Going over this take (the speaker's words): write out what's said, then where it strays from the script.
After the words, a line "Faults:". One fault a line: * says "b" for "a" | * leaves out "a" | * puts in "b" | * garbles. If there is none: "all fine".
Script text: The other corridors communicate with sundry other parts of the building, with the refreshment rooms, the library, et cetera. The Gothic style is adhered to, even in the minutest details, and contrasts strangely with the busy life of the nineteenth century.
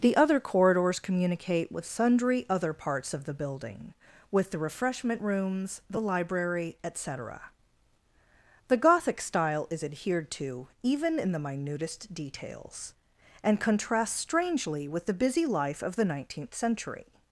The other corridors communicate with sundry other parts of the building, with the refreshment rooms, the library, et cetera. The Gothic style is adhered to, even in the minutest details, and contrasts strangely with the busy life of the nineteenth century.
Faults:
all fine